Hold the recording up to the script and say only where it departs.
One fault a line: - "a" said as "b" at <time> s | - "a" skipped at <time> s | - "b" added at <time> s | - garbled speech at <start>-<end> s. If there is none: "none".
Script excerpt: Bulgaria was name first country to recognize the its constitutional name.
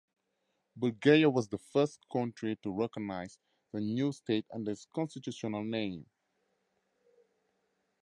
- "name" said as "the" at 1.5 s
- "new state under" added at 3.8 s